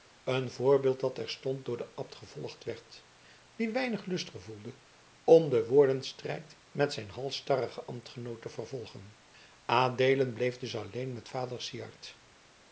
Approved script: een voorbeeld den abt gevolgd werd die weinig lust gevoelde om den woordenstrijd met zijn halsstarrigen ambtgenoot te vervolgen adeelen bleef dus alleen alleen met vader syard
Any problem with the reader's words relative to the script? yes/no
yes